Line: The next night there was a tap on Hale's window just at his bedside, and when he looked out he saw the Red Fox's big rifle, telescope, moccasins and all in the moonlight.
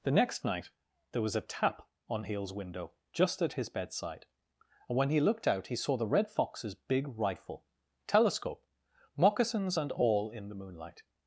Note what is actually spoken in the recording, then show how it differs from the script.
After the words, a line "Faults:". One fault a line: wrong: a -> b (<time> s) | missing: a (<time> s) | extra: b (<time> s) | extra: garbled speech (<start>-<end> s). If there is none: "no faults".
The next night there was a tap on Hale's window just at his bedside, and when he looked out he saw the Red Fox's big rifle, telescope, moccasins and all in the moonlight.
Faults:
no faults